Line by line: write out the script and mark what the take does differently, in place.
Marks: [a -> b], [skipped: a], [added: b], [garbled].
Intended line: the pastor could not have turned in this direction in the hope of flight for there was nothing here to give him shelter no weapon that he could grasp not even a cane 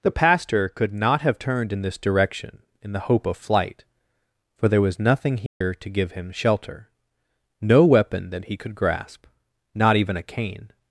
the pastor could not have turned in this direction in the hope of flight for there was nothing here to give him shelter no weapon that he could grasp not even a cane